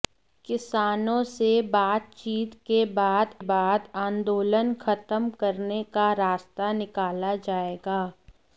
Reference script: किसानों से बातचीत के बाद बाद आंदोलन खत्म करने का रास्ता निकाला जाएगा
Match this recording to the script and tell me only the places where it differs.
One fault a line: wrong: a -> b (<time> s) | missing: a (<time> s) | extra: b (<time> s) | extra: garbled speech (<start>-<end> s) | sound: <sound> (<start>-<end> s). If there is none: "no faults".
no faults